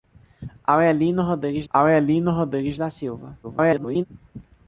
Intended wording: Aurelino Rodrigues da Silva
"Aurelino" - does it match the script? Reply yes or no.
yes